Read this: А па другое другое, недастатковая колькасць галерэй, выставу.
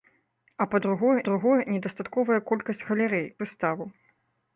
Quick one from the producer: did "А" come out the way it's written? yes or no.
yes